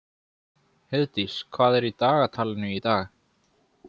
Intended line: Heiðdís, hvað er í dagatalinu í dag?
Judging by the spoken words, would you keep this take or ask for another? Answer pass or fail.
pass